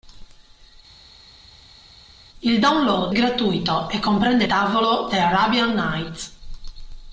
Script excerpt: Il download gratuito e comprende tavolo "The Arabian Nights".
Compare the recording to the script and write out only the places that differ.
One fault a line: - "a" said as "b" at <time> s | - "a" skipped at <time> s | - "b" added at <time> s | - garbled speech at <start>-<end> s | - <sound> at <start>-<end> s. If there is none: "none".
none